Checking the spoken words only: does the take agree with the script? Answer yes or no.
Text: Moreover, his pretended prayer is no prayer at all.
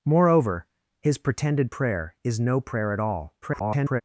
no